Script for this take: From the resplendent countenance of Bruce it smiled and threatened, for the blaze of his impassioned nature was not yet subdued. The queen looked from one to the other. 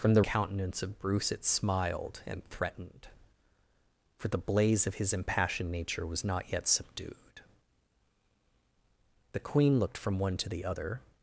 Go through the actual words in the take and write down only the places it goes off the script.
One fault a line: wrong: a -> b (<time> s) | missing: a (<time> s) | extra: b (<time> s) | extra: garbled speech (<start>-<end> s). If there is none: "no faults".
missing: resplendent (0.2 s)